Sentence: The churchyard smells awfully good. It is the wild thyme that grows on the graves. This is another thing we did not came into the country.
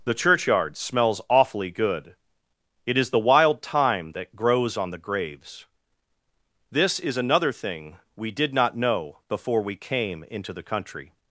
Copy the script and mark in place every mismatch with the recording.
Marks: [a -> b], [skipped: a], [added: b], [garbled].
The churchyard smells awfully good. It is the wild thyme that grows on the graves. This is another thing we did not [added: know before we] came into the country.